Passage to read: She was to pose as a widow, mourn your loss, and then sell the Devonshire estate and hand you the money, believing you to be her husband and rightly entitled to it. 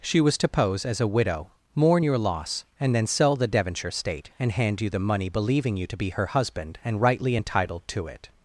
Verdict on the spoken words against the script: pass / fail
pass